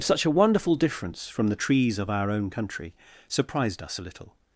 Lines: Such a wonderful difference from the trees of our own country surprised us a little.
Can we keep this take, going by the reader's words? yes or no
yes